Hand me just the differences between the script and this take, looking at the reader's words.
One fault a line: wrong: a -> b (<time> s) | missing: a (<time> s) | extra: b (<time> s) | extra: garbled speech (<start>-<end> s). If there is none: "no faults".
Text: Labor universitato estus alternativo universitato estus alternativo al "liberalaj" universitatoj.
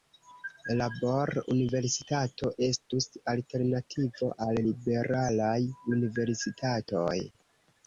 missing: universitato estus alternativo (4.3 s)